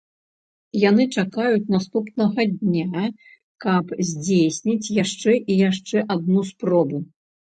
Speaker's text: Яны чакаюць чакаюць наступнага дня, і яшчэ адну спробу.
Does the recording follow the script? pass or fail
fail